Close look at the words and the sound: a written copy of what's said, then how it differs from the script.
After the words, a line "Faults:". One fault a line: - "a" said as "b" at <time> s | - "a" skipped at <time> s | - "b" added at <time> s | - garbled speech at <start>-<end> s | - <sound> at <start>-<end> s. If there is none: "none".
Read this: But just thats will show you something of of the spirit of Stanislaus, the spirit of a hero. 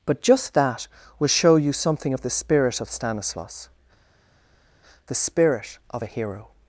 But just that will show you something of the spirit of Stanislaus, the spirit of a hero.
Faults:
- "thats" said as "that" at 0.6 s
- "of" skipped at 2.2 s